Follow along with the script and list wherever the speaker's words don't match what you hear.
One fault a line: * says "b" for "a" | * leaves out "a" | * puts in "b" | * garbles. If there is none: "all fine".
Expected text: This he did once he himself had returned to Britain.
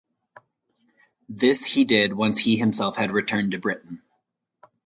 all fine